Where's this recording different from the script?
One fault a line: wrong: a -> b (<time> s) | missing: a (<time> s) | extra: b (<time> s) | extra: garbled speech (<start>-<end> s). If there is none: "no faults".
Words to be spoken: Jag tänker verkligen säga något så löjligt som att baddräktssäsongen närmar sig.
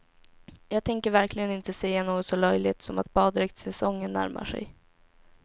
extra: inte (1.5 s)